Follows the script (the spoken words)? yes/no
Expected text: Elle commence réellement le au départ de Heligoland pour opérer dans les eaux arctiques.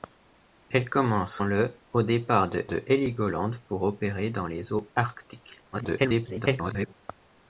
no